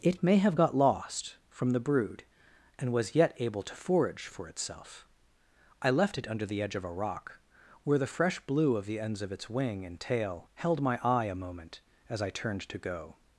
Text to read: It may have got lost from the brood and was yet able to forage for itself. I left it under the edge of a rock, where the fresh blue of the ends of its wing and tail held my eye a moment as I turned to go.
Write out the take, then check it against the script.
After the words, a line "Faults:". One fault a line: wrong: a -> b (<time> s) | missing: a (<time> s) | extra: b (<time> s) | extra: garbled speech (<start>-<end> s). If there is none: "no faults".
It may have got lost from the brood and was yet able to forage for itself. I left it under the edge of a rock, where the fresh blue of the ends of its wing and tail held my eye a moment as I turned to go.
Faults:
no faults